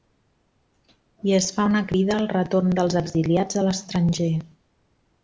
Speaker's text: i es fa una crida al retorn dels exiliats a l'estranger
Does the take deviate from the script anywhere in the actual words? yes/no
no